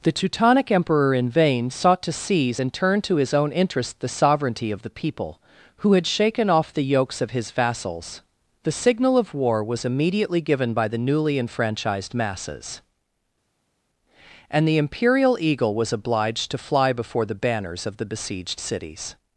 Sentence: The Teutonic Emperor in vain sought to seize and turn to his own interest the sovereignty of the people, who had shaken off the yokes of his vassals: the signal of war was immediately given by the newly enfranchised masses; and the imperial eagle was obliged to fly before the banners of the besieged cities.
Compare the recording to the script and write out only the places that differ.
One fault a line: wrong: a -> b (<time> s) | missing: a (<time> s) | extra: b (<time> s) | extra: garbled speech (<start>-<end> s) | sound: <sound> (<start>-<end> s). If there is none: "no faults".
no faults